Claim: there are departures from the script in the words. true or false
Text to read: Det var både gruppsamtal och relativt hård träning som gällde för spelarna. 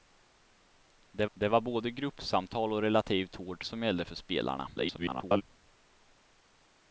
true